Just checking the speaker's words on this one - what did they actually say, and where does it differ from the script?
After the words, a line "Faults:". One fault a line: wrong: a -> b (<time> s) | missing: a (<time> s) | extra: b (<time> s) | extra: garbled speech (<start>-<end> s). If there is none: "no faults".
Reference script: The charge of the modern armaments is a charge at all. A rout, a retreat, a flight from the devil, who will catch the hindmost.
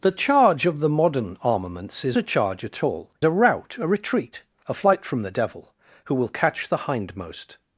The charge of the modern armaments is a charge at all. A rout, a retreat, a flight from the devil, who will catch the hindmost.
Faults:
no faults